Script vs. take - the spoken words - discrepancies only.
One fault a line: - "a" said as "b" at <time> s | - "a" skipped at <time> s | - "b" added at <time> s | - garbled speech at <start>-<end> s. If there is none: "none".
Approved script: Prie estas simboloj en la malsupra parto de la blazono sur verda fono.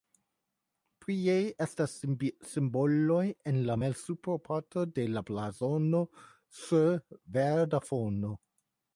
none